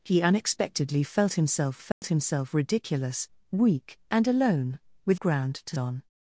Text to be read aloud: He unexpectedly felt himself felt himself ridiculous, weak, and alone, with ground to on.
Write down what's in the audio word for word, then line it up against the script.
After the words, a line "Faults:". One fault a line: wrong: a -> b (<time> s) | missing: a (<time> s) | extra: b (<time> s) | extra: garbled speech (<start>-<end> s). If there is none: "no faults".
He unexpectedly felt himself felt himself ridiculous, weak, and alone, with ground to on.
Faults:
no faults